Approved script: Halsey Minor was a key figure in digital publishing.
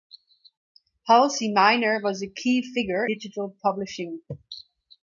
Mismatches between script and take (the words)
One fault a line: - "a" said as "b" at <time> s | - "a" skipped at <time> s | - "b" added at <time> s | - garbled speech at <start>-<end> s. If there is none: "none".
- "in" skipped at 3.0 s